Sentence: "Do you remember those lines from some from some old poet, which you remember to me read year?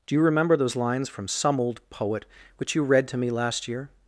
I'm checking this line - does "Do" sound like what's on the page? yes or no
yes